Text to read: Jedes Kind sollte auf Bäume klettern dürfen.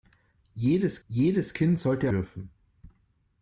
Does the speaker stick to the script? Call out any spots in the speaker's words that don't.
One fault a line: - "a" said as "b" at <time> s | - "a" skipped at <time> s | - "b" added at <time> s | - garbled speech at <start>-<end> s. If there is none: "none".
- "jedes" added at 1.1 s
- "auf Bäume klettern" skipped at 2.1 s